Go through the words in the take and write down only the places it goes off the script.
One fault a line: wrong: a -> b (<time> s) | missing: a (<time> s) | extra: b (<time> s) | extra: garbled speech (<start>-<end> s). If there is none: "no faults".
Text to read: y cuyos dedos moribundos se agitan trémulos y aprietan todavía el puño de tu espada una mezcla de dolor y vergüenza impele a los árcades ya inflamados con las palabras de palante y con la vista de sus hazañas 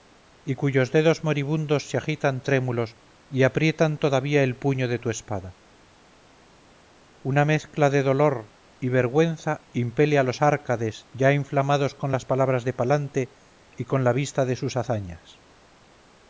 no faults